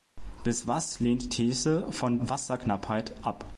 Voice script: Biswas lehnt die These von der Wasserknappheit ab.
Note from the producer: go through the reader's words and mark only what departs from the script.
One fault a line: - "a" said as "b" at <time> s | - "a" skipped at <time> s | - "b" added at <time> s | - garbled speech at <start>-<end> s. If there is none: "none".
- "die" skipped at 1.3 s
- "der" skipped at 2.2 s